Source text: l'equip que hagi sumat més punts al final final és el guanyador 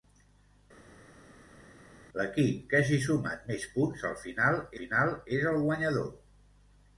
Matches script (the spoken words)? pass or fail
pass